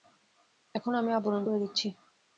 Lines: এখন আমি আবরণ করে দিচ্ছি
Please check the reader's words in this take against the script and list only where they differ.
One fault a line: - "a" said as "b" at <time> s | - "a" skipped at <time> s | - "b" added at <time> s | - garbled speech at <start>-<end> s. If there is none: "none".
none